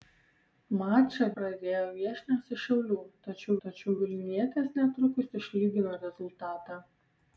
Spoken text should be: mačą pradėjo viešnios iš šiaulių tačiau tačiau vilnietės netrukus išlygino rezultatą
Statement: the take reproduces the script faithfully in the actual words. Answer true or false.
true